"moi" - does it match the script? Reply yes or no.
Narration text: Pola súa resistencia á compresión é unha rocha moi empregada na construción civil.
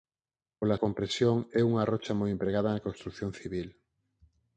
yes